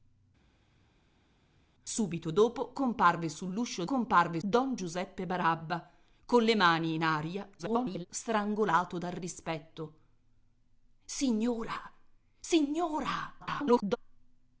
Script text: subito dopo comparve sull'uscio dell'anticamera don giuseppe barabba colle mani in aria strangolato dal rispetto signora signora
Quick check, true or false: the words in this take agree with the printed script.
false